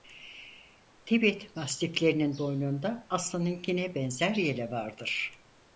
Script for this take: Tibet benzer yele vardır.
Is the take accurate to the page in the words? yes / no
no